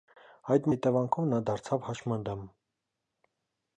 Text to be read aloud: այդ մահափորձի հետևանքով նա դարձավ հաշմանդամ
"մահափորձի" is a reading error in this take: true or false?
true